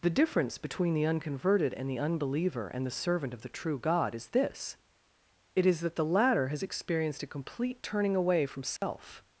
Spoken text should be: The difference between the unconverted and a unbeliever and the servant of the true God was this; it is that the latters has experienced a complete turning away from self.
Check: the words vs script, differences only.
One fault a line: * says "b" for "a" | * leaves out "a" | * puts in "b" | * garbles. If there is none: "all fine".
* says "the" for "a"
* says "is" for "was"
* says "latter" for "latters"